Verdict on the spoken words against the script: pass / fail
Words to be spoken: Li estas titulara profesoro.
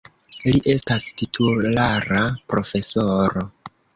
pass